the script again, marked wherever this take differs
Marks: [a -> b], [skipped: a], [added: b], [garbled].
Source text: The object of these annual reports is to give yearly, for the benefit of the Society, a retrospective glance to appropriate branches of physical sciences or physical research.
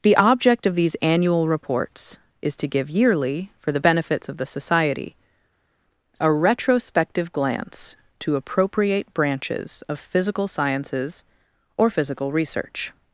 The object of these annual reports is to give yearly, for the [benefit -> benefits] of the Society, a retrospective glance to appropriate branches of physical sciences or physical research.